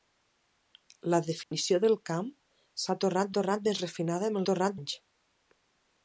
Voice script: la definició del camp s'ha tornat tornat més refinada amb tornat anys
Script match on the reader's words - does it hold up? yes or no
yes